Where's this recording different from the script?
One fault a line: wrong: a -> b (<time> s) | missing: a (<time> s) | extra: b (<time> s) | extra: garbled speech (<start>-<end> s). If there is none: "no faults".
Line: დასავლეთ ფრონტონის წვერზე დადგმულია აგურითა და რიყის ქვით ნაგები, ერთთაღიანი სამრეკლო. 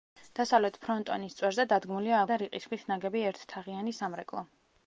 missing: აგურითა (2.2 s)